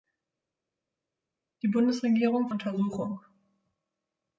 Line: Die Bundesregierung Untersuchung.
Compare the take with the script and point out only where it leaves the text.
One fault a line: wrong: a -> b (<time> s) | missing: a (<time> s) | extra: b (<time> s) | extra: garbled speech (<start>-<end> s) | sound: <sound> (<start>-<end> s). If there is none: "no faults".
no faults